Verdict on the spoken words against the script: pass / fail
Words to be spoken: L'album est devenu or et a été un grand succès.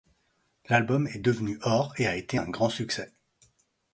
pass